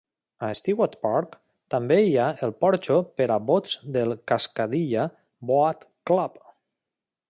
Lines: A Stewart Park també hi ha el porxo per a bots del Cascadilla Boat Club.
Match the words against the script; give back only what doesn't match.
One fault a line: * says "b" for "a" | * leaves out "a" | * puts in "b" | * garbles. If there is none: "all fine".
all fine